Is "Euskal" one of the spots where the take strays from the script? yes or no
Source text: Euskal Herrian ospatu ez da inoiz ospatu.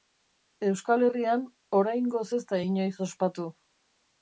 no